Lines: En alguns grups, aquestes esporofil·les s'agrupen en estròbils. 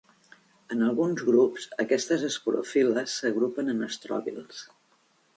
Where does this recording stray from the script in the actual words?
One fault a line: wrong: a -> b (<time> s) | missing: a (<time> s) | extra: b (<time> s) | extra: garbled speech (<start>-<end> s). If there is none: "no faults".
no faults